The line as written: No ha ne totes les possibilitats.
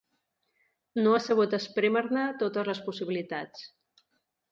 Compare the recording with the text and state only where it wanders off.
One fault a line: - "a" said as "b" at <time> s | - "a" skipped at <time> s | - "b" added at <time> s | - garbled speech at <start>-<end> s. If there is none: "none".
- "sabut esprémer" added at 1.2 s